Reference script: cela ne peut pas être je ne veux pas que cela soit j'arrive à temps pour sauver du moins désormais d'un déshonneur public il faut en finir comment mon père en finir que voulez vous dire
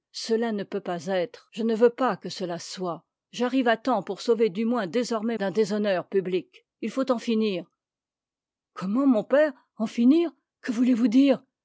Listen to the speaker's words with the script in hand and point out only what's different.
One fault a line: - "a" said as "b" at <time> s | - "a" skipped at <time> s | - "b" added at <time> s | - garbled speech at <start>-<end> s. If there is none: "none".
none